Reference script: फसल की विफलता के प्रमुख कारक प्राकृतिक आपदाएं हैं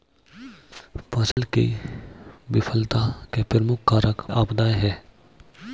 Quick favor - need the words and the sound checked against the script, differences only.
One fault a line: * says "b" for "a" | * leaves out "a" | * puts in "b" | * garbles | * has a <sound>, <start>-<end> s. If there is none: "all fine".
* has a dropout, 1.3-1.4 s
* leaves out "प्राकृतिक"